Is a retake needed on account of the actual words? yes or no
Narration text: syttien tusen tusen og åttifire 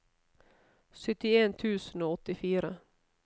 yes